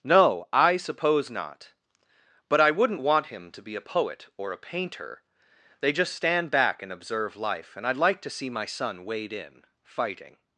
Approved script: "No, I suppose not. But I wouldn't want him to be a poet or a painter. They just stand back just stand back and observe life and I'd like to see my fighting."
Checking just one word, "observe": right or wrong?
right